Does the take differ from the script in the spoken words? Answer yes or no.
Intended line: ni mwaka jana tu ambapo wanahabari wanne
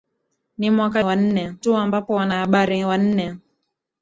yes